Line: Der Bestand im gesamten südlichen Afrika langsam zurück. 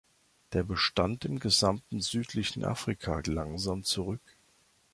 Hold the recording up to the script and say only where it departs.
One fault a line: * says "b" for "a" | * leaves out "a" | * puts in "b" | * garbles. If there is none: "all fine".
all fine